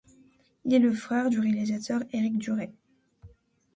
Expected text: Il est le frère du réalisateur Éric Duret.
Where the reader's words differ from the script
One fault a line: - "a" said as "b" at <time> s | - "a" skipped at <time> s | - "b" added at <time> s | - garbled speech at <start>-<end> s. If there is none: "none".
none